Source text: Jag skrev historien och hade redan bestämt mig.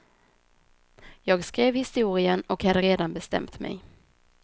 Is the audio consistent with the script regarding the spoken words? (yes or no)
yes